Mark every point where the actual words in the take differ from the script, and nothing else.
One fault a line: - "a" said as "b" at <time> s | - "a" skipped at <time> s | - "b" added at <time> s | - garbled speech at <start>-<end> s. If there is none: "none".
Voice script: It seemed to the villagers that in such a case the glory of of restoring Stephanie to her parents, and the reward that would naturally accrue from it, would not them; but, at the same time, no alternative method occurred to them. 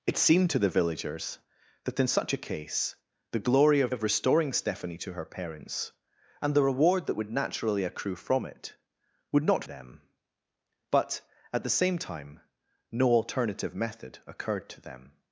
none